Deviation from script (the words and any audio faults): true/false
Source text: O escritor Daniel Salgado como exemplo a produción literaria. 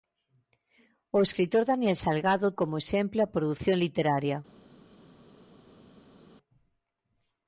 false